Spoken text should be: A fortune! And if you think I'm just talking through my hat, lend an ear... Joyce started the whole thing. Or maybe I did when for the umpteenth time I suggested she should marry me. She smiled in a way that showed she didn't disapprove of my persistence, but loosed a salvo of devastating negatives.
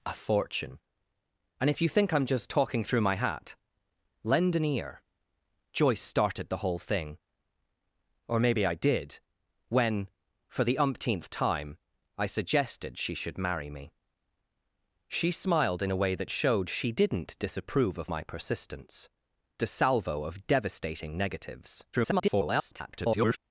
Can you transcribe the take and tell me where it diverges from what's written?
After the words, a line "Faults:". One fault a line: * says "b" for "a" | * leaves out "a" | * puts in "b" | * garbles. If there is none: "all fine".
A fortune! And if you think I'm just talking through my hat, lend an ear... Joyce started the whole thing. Or maybe I did when for the umpteenth time I suggested she should marry me. She smiled in a way that showed she didn't disapprove of my persistence, a salvo of devastating negatives. [garbled]
Faults:
* leaves out "but loosed"
* garbles